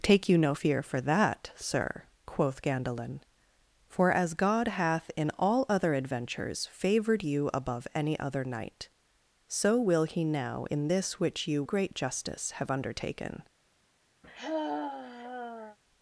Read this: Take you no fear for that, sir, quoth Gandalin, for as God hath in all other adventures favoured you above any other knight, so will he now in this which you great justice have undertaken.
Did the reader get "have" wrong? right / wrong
right